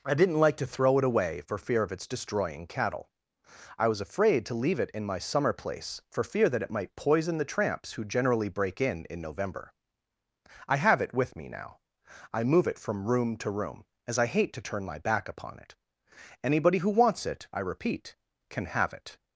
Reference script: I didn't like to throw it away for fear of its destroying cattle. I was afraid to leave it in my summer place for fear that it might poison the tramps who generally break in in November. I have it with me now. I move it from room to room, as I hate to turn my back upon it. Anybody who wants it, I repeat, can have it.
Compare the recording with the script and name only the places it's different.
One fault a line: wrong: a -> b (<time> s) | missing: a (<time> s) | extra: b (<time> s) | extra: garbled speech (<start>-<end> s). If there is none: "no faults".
no faults